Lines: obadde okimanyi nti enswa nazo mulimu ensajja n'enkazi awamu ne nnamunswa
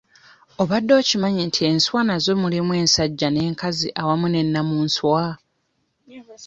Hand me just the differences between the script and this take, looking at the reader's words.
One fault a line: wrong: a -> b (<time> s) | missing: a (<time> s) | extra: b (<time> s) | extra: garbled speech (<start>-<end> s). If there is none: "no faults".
no faults